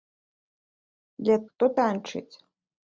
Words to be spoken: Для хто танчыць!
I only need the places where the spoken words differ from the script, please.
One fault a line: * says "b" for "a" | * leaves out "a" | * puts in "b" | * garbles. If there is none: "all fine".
all fine